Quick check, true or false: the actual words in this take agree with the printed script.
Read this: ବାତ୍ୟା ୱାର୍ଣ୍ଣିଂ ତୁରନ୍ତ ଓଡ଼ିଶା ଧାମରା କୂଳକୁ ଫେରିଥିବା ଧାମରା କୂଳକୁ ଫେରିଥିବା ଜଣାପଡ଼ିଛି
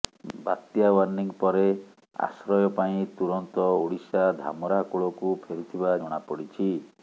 false